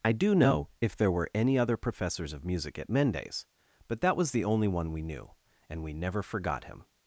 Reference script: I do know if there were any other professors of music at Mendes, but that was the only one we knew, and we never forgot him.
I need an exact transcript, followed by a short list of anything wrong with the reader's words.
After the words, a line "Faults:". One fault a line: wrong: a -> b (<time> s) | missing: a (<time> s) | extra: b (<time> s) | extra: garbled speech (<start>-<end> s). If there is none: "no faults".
I do know if there were any other professors of music at Mendes, but that was the only one we knew, and we never forgot him.
Faults:
no faults